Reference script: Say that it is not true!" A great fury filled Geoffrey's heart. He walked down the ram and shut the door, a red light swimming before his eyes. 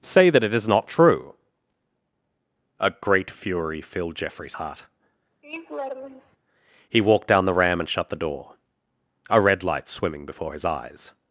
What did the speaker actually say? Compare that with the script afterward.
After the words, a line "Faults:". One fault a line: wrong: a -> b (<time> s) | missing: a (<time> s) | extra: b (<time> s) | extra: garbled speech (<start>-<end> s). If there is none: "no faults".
Say that it is not true!" A great fury filled Geoffrey's heart. He walked down the ram and shut the door, a red light swimming before his eyes.
Faults:
no faults